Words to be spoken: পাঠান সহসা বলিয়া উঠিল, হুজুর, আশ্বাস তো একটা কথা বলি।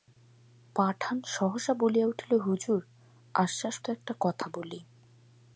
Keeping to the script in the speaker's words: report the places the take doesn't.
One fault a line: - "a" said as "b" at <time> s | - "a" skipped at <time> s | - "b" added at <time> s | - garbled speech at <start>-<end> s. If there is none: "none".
none